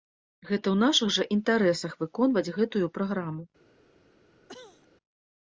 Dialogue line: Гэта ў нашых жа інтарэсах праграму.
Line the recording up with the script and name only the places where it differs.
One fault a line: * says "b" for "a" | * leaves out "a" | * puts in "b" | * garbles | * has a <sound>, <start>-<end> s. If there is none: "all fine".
* puts in "выконваць гэтую"
* has a cough, 4.5-4.9 s